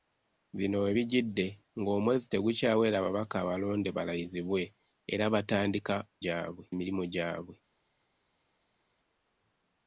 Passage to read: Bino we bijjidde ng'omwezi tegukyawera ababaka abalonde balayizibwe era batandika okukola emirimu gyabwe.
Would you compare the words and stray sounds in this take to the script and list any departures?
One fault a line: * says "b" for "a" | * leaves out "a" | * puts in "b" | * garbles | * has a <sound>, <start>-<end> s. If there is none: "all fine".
* says "gyabwe" for "okukola"